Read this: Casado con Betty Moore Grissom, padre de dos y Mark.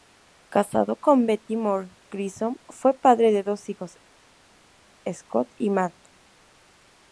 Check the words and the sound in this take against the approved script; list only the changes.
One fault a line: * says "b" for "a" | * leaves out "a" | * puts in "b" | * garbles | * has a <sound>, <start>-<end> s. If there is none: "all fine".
* puts in "fue"
* puts in "hijos Scott"